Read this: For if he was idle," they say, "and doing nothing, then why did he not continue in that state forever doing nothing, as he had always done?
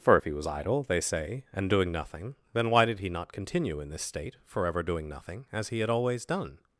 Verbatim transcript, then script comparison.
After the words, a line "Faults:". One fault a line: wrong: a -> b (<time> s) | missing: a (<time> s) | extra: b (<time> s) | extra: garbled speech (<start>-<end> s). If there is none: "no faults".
For if he was idle," they say, "and doing nothing, then why did he not continue in this state forever doing nothing, as he had always done?
Faults:
wrong: that -> this (3.9 s)